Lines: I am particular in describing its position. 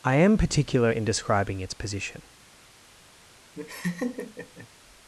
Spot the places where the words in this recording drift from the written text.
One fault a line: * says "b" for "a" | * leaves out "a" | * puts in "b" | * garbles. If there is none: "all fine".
all fine